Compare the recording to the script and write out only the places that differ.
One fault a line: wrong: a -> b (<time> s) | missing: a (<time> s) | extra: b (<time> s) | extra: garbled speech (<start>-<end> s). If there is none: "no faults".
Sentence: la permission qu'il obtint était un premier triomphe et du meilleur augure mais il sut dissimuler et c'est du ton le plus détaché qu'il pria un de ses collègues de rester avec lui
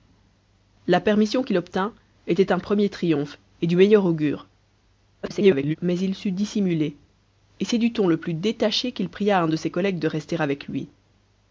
extra: garbled speech (5.2-5.8 s)